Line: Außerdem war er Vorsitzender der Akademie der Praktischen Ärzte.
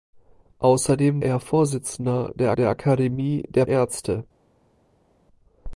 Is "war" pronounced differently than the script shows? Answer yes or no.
yes